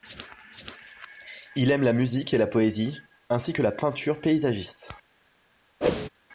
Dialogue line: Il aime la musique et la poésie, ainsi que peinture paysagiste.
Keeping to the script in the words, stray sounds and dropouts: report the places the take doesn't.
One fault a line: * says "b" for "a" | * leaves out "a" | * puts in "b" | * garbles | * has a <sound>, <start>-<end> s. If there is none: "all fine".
* puts in "la"
* has a whoosh, 5.8-6.1 s